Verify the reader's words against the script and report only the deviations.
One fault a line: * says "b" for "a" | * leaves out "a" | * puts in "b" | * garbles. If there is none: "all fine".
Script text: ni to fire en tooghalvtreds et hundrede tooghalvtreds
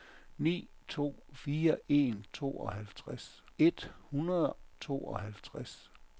all fine